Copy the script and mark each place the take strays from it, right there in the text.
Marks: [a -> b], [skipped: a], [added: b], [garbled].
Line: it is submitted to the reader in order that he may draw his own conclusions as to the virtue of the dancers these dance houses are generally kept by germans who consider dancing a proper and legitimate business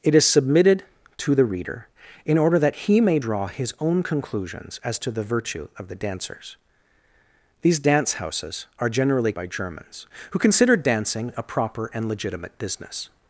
it is submitted to the reader in order that he may draw his own conclusions as to the virtue of the dancers these dance houses are generally [skipped: kept] by germans who consider dancing a proper and legitimate business